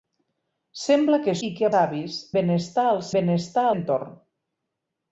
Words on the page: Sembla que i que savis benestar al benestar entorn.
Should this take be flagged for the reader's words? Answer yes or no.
no